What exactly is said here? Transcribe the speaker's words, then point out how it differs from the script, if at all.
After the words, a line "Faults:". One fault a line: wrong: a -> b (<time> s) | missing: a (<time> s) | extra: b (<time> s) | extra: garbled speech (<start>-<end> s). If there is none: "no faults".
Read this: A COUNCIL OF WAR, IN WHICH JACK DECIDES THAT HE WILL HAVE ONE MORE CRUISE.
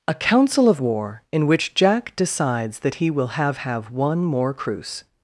A COUNCIL OF WAR, IN WHICH JACK DECIDES THAT HE WILL HAVE HAVE ONE MORE CRUISE.
Faults:
extra: HAVE (3.6 s)